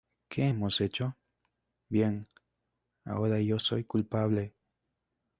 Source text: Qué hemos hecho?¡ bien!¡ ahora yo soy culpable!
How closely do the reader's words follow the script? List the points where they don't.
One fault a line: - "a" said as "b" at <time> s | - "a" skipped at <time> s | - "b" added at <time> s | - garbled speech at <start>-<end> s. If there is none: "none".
none